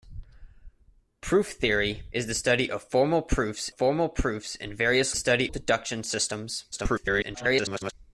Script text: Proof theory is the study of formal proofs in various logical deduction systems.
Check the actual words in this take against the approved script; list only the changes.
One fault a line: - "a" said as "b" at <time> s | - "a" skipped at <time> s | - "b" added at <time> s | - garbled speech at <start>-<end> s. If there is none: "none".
- "formal proofs" added at 3.7 s
- "logical" said as "study" at 5.1 s
- garbled speech at 6.7-7.9 s